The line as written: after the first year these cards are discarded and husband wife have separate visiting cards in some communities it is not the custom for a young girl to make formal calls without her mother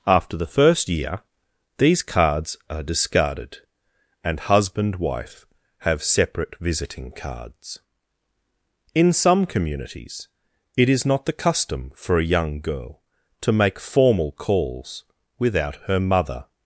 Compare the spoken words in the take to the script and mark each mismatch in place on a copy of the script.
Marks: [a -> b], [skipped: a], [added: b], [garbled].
after the first year these cards are discarded and husband wife have separate visiting cards in some communities it is not the custom for a young girl to make formal calls without her mother